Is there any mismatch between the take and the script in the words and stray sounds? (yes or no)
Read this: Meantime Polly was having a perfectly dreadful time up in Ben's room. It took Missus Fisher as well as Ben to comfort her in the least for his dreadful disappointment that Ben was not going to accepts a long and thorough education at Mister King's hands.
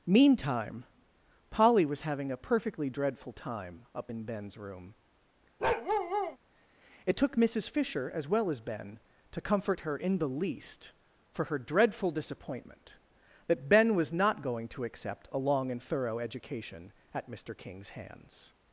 yes